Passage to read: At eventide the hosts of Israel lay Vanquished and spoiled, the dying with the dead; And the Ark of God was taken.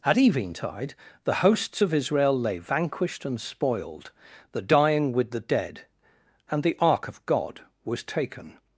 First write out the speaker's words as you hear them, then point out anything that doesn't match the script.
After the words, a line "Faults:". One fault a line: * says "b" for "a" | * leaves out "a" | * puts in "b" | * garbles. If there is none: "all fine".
At eventide the hosts of Israel lay Vanquished and spoiled, the dying with the dead; And the Ark of God was taken.
Faults:
all fine